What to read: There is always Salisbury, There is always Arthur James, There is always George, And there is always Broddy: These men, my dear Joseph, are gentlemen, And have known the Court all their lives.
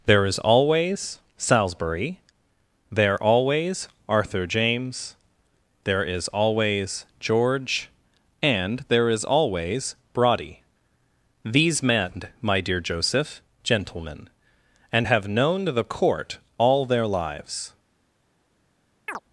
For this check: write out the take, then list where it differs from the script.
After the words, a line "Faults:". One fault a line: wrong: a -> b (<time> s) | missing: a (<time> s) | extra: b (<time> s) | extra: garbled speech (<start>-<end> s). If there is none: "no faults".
There is always Salisbury, There always Arthur James, There is always George, And there is always Broddy: These men, my dear Joseph, gentlemen, And have known the Court all their lives.
Faults:
missing: is (3.2 s)
missing: are (13.4 s)